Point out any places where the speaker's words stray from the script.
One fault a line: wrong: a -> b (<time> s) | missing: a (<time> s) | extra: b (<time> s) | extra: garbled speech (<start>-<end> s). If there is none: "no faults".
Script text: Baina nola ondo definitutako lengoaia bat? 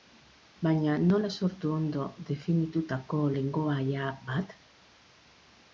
extra: sortu (1.4 s)